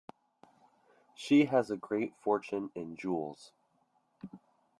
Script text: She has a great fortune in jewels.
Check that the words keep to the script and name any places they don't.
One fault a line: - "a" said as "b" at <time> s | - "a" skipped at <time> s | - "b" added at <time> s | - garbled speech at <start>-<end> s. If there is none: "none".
none